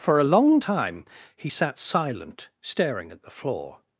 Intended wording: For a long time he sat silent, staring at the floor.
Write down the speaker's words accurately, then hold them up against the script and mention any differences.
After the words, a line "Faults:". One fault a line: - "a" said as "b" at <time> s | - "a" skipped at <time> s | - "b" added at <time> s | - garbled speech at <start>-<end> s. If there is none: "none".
For a long time he sat silent, staring at the floor.
Faults:
none